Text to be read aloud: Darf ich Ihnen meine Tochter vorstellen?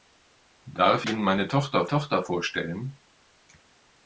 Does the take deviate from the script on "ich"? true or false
true